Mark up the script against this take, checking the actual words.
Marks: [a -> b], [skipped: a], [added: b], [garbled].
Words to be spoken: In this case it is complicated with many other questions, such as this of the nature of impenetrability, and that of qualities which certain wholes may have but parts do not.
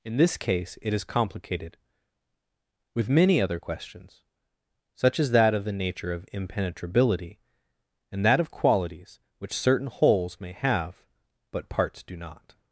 In this case it is complicated with many other questions, such as [this -> that] of the nature of impenetrability, and that of qualities which certain wholes may have but parts do not.